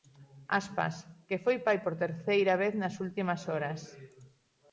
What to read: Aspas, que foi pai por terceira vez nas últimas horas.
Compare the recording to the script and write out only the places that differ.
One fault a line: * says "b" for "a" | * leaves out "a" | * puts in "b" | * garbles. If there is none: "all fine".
all fine